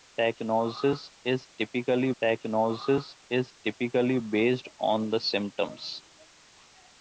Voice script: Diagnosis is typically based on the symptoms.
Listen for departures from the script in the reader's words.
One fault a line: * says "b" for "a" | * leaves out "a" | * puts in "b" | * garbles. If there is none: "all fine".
* puts in "diagnosis is typically"